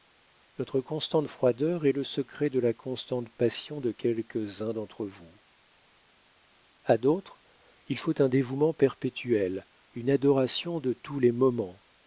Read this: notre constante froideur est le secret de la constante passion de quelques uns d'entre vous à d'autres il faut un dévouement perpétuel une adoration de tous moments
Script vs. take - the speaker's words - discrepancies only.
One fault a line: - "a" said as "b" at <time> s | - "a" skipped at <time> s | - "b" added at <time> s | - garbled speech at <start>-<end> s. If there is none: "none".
- "les" added at 11.2 s